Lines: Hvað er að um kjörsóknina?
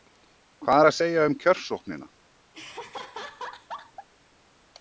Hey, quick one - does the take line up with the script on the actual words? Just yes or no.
no